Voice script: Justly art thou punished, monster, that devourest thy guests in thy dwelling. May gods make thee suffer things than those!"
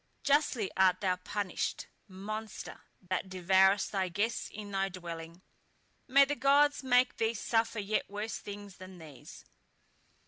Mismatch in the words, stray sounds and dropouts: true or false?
true